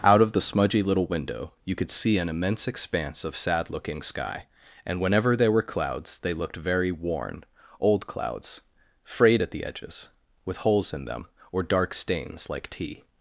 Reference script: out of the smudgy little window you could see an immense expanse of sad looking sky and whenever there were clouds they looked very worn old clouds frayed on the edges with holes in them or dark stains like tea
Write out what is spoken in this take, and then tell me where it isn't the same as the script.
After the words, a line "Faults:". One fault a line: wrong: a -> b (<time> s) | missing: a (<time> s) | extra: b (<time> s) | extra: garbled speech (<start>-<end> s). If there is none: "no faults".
out of the smudgy little window you could see an immense expanse of sad looking sky and whenever there were clouds they looked very worn old clouds frayed at the edges with holes in them or dark stains like tea
Faults:
wrong: on -> at (9.4 s)